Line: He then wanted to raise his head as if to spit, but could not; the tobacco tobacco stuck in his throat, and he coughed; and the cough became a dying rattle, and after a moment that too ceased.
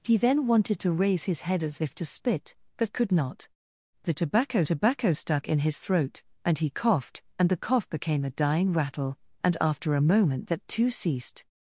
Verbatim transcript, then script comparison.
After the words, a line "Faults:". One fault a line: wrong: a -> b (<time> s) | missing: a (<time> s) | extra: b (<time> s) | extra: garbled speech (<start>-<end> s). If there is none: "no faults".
He then wanted to raise his head as if to spit, but could not; the tobacco tobacco stuck in his throat, and he coughed; and the cough became a dying rattle, and after a moment that too ceased.
Faults:
no faults